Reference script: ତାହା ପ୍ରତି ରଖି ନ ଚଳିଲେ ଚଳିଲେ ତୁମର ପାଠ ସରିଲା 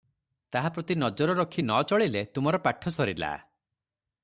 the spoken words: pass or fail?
fail